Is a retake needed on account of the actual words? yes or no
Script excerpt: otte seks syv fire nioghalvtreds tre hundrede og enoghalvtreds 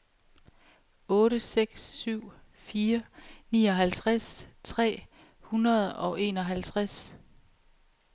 no